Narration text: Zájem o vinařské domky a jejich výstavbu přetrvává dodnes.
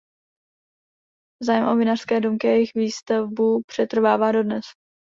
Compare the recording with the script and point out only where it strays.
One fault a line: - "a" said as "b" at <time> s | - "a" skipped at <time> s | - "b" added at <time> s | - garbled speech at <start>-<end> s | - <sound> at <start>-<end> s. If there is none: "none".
none